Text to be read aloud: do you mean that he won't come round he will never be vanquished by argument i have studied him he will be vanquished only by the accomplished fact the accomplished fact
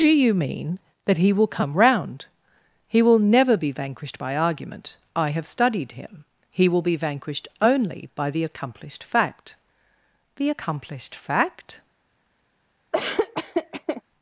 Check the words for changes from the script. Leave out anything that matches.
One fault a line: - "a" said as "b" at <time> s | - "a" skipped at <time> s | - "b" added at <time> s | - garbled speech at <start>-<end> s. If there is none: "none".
- "won't" said as "will" at 1.3 s